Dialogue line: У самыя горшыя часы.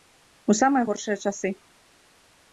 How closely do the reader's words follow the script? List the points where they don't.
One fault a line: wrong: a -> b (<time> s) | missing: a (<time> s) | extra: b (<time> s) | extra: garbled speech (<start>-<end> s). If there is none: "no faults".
no faults